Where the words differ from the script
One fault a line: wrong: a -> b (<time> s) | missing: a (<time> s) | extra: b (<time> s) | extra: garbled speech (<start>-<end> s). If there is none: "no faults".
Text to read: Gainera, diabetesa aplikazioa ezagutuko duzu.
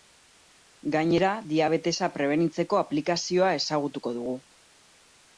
extra: prebenitzeko (2.1 s)
wrong: duzu -> dugu (4.2 s)